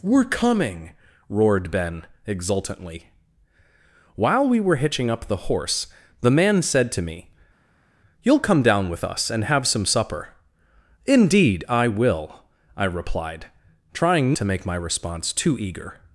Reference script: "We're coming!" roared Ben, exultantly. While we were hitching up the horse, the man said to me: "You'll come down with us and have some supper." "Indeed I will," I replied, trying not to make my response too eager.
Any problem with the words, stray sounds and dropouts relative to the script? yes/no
yes